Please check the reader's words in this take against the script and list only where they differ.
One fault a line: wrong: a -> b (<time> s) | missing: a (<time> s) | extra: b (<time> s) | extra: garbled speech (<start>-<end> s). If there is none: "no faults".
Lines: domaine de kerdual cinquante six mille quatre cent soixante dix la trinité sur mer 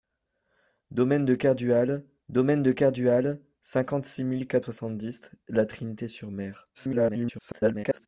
extra: domaine de kerdual (2.3 s)
missing: cent (4.7 s)
extra: garbled speech (6.7-8.1 s)